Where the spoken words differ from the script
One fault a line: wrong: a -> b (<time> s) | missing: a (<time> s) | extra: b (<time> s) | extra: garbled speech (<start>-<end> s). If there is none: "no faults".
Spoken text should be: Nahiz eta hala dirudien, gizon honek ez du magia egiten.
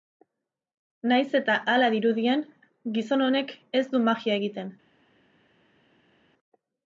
no faults